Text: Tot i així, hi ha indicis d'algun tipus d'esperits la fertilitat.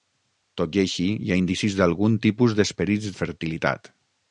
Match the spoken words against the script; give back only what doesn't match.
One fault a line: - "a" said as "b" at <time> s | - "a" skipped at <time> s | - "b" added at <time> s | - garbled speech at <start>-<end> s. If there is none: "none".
none